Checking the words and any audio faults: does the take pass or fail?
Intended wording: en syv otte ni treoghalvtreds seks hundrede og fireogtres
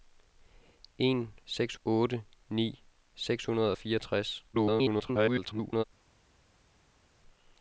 fail